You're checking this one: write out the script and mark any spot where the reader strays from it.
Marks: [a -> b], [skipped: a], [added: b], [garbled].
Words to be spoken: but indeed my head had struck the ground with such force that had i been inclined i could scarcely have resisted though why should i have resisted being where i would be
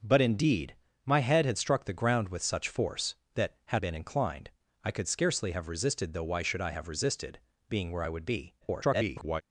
but indeed my head had struck the ground with such force that had [skipped: i] been inclined i could scarcely have resisted though why should i have resisted being where i would be [garbled]